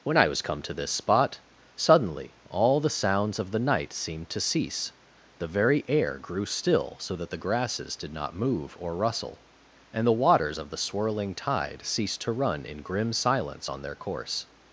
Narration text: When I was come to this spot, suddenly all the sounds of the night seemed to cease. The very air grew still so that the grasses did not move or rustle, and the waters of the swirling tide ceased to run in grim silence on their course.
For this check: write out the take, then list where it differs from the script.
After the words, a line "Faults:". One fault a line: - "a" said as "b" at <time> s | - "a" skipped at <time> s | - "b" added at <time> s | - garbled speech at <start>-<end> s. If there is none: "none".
When I was come to this spot, suddenly all the sounds of the night seemed to cease. The very air grew still so that the grasses did not move or rustle, and the waters of the swirling tide ceased to run in grim silence on their course.
Faults:
none